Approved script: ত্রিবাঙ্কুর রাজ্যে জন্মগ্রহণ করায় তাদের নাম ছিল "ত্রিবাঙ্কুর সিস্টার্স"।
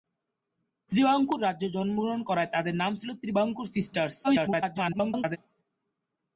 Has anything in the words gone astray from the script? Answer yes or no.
yes